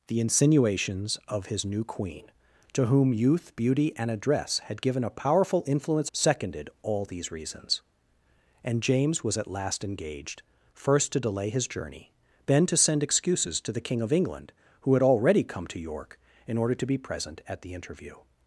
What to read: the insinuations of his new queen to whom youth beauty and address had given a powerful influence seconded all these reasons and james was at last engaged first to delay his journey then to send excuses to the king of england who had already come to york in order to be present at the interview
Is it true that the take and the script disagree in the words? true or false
false